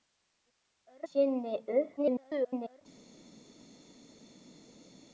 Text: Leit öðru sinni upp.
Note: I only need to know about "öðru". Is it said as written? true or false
false